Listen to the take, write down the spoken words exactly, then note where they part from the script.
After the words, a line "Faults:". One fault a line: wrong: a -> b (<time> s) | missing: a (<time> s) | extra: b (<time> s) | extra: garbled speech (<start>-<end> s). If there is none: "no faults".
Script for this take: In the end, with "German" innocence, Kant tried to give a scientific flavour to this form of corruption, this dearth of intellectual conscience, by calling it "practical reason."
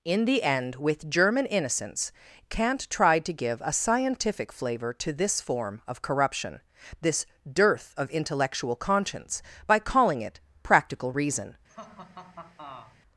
In the end, with "German" innocence, Kant tried to give a scientific flavour to this form of corruption, this dearth of intellectual conscience, by calling it "practical reason."
Faults:
no faults